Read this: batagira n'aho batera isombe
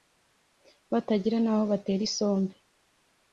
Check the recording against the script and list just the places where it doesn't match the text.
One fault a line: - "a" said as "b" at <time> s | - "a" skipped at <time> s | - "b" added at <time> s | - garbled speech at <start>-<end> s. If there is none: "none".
none